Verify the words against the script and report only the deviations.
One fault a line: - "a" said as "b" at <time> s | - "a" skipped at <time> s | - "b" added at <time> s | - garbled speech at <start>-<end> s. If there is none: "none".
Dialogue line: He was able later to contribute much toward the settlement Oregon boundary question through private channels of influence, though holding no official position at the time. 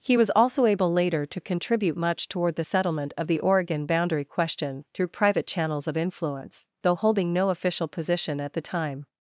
- "also" added at 0.3 s
- "of the" added at 3.2 s